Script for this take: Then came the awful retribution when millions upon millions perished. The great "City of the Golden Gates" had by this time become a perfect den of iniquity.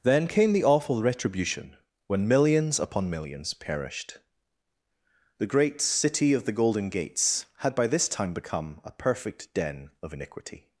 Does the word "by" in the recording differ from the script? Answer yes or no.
no